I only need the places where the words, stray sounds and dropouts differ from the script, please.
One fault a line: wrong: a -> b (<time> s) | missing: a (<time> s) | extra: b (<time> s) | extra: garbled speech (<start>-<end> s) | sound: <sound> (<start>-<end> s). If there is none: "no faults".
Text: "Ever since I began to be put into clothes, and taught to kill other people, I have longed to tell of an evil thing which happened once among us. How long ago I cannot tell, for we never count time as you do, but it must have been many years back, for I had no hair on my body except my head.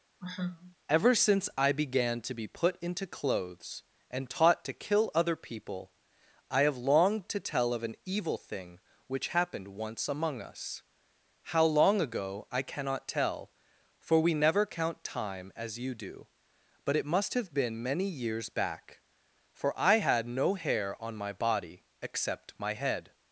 sound: sigh (0.2-0.8 s)